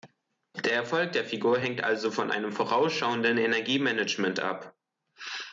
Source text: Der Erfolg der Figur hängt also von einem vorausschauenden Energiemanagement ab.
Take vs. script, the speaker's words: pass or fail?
pass